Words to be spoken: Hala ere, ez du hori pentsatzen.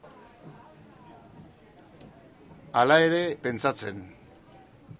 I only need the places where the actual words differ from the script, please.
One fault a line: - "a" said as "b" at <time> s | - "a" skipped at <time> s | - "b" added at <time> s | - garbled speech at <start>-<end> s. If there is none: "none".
- "ez du hori" skipped at 3.2 s